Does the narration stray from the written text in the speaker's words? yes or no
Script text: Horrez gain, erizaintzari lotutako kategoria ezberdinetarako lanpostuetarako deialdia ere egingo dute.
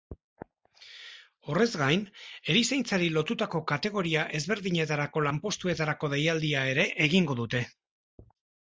no